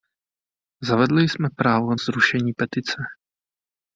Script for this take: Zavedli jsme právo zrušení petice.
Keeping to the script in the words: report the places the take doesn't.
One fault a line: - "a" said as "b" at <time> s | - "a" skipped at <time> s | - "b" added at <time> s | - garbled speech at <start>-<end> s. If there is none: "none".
none